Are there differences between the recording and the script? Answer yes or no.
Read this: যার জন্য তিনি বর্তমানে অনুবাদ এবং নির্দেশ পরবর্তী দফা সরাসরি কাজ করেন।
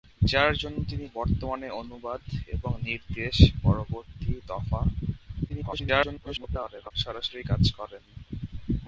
yes